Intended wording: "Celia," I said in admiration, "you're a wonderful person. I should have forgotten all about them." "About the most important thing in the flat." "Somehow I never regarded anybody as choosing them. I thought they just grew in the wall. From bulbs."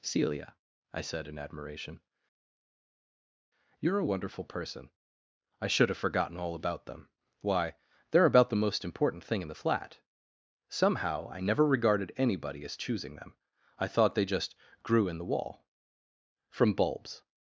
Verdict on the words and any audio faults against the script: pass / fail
fail